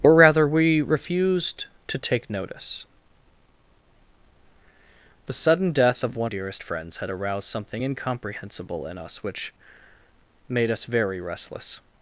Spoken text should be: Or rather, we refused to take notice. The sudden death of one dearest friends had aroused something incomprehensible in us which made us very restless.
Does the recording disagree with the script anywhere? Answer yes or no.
no